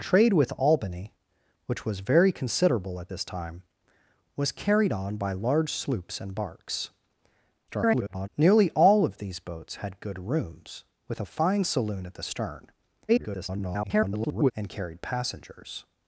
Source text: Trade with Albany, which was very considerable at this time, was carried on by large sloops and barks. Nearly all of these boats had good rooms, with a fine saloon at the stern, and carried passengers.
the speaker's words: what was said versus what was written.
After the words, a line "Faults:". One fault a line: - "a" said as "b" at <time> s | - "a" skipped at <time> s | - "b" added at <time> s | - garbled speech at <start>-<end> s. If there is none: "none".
Trade with Albany, which was very considerable at this time, was carried on by large sloops and barks. [garbled] Nearly all of these boats had good rooms, with a fine saloon at the stern, [garbled] and carried passengers.
Faults:
- garbled speech at 7.7-8.3 s
- garbled speech at 13.1-14.5 s